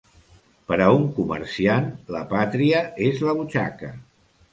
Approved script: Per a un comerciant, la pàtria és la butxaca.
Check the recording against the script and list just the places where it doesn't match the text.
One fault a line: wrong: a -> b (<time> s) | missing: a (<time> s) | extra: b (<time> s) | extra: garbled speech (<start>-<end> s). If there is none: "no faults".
no faults